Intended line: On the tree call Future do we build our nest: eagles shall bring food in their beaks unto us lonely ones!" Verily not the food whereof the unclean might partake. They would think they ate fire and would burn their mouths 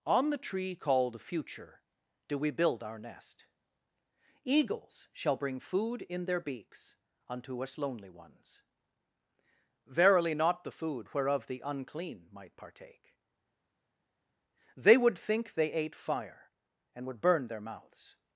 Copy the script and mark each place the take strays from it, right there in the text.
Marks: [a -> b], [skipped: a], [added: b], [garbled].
On the tree [call -> called] Future do we build our nest: eagles shall bring food in their beaks unto us lonely ones!" Verily not the food whereof the unclean might partake. They would think they ate fire and would burn their mouths